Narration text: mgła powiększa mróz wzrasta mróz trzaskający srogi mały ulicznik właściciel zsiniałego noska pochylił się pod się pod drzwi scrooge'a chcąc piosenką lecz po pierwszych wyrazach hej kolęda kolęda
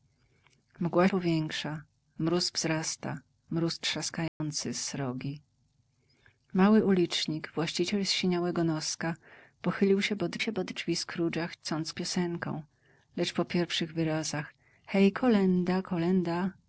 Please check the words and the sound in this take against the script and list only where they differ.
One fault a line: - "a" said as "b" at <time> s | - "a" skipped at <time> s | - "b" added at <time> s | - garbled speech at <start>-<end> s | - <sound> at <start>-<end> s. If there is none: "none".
- dropout at 4.3-4.4 s